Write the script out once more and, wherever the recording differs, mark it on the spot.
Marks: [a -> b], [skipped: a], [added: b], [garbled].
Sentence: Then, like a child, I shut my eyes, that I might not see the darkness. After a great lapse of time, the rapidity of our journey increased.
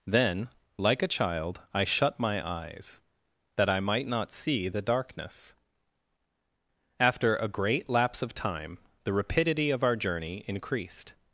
Then, like a child, I shut my eyes, that I might not see the darkness. After a great lapse of time, the rapidity of our journey increased.